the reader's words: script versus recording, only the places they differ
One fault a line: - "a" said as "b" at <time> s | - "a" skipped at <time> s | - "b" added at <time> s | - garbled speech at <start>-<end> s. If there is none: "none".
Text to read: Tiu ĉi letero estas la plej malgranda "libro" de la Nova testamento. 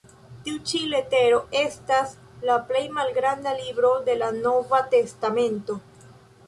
none